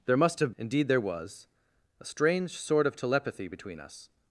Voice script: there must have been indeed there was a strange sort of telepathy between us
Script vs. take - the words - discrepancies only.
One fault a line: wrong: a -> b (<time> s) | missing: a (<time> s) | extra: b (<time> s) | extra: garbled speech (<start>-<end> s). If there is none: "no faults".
missing: been (0.5 s)